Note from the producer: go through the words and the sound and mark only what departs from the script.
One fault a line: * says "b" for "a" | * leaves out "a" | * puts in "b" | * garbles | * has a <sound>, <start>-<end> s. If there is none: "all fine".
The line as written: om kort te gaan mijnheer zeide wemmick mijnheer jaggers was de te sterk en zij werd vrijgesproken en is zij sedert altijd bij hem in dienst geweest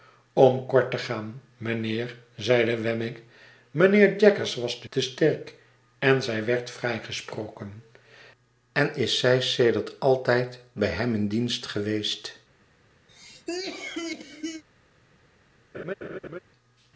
* has a cough, 13.1-14.6 s
* has a laugh, 15.7-16.4 s